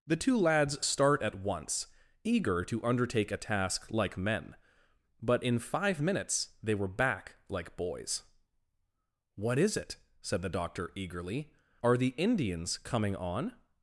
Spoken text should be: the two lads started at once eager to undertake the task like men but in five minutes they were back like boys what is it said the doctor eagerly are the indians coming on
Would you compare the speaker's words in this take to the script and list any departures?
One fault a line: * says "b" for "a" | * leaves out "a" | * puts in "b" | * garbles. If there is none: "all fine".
* says "start" for "started"
* says "a" for "the"